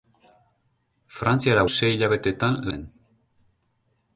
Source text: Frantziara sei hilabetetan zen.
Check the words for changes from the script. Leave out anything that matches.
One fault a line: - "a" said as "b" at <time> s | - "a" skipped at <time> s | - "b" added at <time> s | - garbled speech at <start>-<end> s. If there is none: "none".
none